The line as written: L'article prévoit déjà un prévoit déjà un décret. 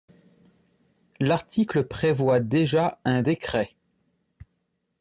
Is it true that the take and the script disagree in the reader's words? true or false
true